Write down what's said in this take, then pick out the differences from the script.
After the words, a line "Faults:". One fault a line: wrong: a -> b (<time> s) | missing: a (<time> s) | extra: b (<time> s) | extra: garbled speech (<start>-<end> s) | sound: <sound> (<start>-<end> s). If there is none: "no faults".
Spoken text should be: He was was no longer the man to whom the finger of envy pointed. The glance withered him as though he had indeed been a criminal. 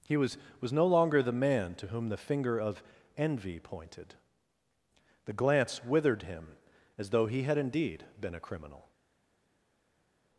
He was was no longer the man to whom the finger of envy pointed. The glance withered him as though he had indeed been a criminal.
Faults:
no faults